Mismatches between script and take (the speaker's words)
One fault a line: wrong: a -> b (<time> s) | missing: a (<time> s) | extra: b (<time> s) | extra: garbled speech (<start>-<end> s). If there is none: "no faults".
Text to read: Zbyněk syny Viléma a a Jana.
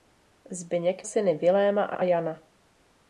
no faults